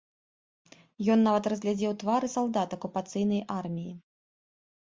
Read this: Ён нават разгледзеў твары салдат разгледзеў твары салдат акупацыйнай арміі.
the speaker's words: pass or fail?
fail